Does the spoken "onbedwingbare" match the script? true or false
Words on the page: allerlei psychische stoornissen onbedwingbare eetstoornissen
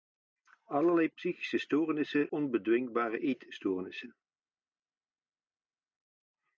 true